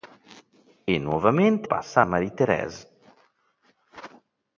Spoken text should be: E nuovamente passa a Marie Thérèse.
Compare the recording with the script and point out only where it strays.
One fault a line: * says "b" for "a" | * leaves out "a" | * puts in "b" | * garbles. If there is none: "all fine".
all fine